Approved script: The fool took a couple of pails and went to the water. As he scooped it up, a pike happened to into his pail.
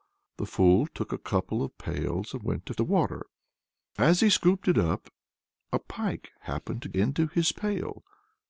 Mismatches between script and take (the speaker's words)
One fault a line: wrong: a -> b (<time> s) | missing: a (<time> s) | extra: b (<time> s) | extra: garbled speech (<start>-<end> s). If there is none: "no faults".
no faults